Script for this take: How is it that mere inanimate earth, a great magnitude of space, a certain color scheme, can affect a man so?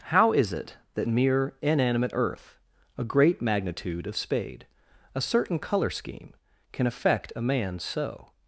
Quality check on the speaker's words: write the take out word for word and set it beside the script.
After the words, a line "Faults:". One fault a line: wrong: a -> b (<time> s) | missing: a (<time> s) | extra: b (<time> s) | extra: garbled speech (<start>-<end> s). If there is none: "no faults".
How is it that mere inanimate earth, a great magnitude of spade, a certain color scheme, can affect a man so?
Faults:
wrong: space -> spade (4.2 s)